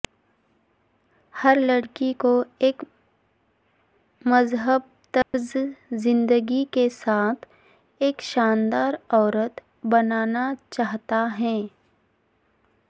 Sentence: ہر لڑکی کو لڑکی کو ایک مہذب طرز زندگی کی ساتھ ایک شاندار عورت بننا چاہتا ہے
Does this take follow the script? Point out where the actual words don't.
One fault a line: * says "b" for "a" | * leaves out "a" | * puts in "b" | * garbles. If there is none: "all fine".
* leaves out "لڑکی کو"
* says "کے" for "کی"